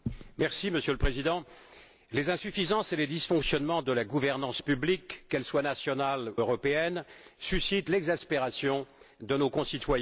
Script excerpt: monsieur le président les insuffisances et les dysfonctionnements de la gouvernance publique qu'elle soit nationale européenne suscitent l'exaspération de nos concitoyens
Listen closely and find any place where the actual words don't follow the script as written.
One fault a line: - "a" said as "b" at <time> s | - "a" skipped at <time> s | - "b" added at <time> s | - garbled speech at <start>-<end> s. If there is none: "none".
none